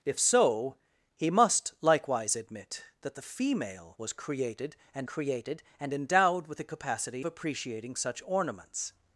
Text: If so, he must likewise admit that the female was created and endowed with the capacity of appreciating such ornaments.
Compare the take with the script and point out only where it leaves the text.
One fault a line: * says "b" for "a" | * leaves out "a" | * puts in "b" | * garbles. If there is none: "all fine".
* puts in "created and"
* leaves out "of"